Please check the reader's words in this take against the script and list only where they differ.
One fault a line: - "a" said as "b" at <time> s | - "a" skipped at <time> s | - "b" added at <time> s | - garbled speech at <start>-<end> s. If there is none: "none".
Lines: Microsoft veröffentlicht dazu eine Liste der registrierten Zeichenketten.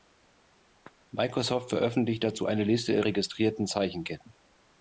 none